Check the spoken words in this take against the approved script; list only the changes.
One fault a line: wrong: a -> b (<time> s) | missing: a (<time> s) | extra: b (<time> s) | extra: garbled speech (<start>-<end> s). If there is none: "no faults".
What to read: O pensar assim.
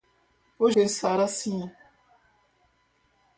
no faults